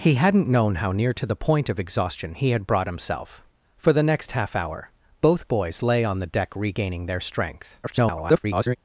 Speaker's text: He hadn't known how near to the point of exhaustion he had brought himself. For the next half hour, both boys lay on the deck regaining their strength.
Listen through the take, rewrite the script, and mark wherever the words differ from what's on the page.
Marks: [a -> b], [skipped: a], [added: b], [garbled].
He hadn't known how near to the point of exhaustion he had brought himself. For the next half hour, both boys lay on the deck regaining their strength. [garbled]